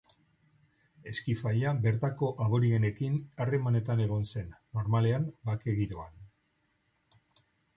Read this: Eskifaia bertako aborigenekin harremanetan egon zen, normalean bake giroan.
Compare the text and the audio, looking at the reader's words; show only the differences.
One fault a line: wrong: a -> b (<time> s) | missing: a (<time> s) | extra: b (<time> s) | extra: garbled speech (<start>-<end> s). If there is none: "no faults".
no faults